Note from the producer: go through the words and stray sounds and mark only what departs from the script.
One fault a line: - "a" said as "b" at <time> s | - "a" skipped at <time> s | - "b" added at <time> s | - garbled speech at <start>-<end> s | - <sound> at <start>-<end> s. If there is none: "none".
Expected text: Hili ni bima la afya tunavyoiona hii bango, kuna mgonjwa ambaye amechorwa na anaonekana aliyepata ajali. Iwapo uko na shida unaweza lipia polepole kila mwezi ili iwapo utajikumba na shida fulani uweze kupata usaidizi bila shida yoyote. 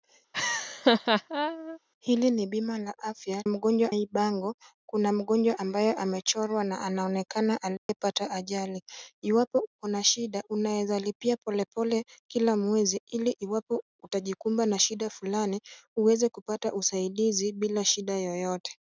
- laugh at 0.3-1.8 s
- "tunavyoiona" said as "mgonjwa" at 3.5 s
- dropout at 7.8-7.9 s